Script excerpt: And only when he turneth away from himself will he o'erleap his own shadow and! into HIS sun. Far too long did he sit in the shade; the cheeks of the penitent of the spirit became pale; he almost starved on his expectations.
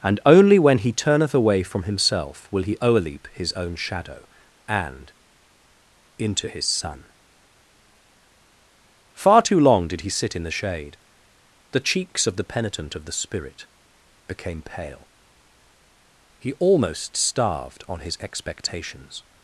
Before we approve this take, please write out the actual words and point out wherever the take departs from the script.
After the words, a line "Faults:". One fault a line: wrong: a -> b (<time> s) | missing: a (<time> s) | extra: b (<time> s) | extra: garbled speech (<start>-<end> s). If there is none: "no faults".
And only when he turneth away from himself will he o'erleap his own shadow and! into HIS sun. Far too long did he sit in the shade; the cheeks of the penitent of the spirit became pale; he almost starved on his expectations.
Faults:
no faults